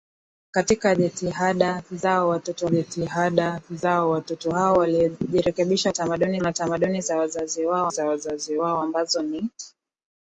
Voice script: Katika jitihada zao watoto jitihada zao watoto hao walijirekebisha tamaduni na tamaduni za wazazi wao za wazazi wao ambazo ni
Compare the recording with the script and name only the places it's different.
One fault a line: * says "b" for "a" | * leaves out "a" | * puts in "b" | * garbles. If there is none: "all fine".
all fine